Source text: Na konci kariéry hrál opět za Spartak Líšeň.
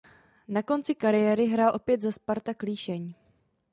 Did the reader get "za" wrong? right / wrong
right